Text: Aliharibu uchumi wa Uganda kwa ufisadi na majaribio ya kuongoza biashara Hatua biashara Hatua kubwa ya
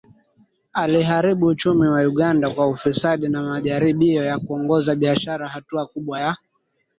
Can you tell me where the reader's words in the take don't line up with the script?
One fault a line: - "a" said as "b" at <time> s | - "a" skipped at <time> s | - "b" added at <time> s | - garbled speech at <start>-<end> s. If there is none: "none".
- "biashara Hatua" skipped at 5.8 s